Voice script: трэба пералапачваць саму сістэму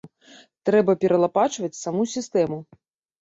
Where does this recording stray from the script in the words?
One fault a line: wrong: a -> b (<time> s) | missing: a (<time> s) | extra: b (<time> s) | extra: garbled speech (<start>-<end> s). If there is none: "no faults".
no faults